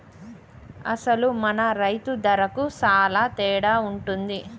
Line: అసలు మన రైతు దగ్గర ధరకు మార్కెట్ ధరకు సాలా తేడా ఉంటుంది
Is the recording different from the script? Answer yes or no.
yes